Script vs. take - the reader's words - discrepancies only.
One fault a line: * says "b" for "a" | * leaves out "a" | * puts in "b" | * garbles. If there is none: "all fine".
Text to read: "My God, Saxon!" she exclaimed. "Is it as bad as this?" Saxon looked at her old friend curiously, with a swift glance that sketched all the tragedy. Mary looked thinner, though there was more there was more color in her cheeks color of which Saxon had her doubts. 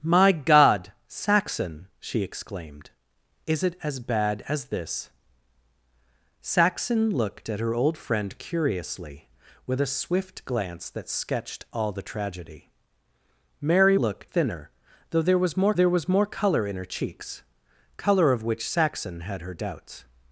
all fine